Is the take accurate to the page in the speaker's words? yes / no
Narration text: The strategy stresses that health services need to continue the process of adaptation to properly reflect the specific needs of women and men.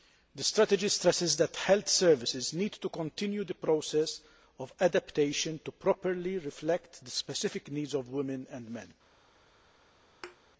yes